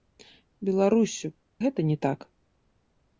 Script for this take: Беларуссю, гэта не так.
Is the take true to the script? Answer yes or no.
yes